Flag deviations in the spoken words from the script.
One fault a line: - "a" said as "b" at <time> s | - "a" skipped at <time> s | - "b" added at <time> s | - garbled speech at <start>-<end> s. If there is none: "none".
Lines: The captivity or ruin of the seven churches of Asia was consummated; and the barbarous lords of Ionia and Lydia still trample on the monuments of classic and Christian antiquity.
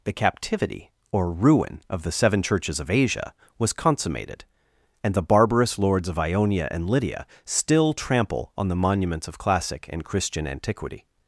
none